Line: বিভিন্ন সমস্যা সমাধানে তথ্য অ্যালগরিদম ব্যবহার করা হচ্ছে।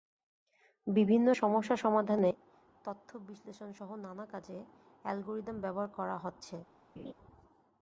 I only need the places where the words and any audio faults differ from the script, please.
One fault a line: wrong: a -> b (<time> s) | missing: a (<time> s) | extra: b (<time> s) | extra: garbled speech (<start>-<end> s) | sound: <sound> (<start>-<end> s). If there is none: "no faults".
extra: বিশ্লেষণসহ নানা কাজে (3.3 s)
sound: laugh (7.0-7.1 s)